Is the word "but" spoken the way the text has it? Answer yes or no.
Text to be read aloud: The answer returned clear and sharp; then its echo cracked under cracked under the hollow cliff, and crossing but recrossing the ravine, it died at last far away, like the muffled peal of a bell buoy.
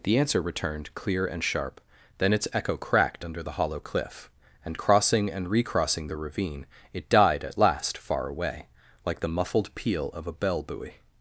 no